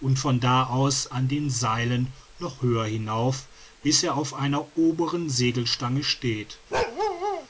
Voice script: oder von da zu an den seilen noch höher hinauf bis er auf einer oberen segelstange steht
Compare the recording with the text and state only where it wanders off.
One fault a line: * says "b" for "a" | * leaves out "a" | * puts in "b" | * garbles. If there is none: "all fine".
* says "und" for "oder"
* says "aus" for "zu"